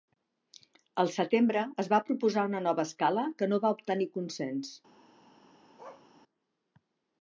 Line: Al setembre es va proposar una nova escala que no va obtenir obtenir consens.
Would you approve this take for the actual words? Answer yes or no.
no